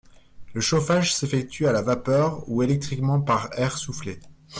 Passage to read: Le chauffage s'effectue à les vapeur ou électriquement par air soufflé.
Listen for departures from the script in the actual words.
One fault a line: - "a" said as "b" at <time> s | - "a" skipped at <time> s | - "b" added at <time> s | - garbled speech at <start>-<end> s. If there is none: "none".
- "les" said as "la" at 1.7 s